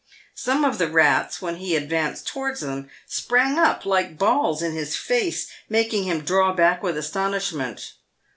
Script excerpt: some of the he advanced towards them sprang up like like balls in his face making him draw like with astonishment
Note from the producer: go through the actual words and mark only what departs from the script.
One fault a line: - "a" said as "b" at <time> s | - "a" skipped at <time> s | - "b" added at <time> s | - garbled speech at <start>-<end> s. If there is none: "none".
- "rats when" added at 0.9 s
- "like" skipped at 4.2 s
- "like" said as "back" at 6.5 s